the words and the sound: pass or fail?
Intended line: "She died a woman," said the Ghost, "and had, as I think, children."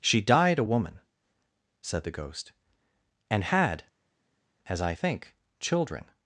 pass